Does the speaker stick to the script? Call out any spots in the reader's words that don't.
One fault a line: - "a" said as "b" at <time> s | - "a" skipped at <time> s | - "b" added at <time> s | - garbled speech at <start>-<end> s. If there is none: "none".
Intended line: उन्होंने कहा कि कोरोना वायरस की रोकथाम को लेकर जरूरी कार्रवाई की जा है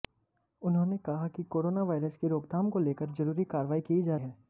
none